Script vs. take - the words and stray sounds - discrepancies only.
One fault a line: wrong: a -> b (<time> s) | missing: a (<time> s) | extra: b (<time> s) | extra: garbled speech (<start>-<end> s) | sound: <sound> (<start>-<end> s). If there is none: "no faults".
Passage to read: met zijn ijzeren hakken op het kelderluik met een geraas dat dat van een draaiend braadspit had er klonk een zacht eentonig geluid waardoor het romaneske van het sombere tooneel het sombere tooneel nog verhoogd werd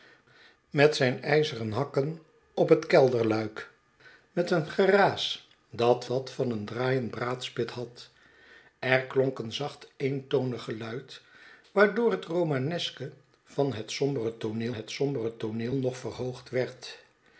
no faults